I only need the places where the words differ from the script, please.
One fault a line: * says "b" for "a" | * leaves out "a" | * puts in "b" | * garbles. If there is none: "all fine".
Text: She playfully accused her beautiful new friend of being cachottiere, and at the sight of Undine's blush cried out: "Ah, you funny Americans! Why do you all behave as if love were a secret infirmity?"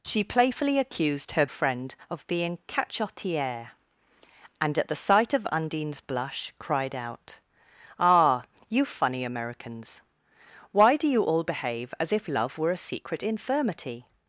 * leaves out "beautiful new"